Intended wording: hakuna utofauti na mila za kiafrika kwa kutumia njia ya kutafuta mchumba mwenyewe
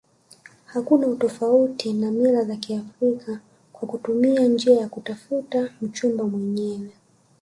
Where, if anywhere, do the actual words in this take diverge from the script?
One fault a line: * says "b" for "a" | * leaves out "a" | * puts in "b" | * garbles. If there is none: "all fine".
all fine